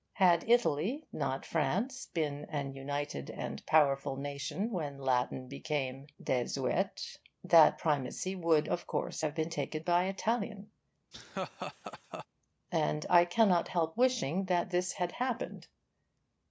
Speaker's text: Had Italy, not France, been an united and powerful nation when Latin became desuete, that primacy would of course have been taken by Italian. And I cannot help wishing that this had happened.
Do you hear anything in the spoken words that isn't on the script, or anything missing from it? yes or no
no